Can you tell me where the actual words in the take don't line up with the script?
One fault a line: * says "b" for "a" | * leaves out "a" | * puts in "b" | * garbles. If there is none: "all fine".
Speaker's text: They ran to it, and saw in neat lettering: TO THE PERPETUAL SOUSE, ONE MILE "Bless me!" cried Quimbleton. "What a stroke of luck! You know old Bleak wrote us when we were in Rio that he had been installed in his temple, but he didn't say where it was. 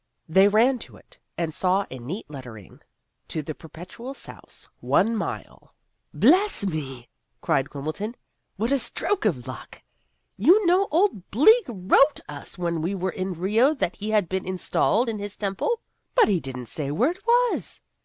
all fine